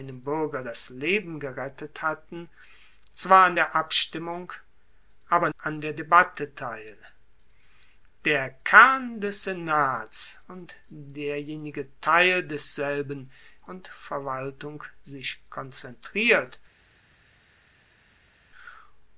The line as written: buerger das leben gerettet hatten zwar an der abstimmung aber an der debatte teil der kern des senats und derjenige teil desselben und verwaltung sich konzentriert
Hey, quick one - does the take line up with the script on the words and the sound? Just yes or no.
yes